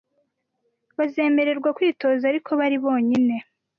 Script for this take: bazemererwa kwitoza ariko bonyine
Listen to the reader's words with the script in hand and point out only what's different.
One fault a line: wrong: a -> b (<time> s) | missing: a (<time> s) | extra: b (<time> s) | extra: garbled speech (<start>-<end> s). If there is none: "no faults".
extra: bari (2.6 s)